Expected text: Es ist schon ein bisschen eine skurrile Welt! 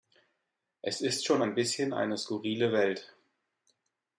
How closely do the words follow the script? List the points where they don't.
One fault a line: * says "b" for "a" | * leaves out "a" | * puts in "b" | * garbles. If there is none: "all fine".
all fine